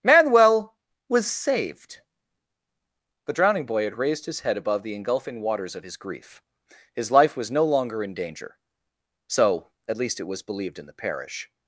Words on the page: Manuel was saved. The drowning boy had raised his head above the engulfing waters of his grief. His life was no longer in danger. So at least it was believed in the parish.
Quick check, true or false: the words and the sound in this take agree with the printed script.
true